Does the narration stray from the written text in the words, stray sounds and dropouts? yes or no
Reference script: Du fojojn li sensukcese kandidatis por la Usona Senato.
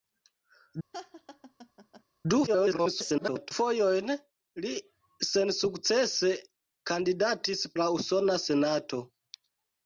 yes